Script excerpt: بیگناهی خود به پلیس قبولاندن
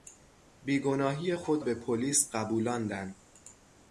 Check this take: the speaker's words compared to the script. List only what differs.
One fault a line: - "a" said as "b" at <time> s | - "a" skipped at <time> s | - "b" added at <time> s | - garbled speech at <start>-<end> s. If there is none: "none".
none